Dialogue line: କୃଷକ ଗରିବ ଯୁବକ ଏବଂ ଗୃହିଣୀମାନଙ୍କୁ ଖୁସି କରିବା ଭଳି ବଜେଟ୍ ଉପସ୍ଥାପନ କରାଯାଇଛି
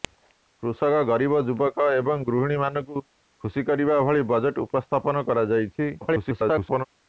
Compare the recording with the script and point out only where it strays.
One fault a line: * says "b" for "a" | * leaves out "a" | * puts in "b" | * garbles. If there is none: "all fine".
* garbles